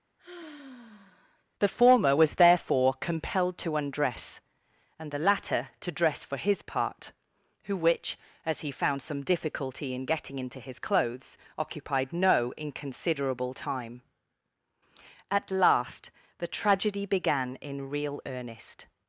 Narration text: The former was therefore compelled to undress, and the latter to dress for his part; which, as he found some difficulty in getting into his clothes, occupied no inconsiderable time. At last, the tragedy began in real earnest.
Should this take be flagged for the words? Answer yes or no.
yes